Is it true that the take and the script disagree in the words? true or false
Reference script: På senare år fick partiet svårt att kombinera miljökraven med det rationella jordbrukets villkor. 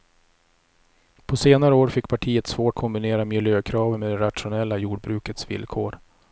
true